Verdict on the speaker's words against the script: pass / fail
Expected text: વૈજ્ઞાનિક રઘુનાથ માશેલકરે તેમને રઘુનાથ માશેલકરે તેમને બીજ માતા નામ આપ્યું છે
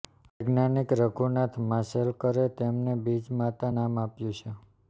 fail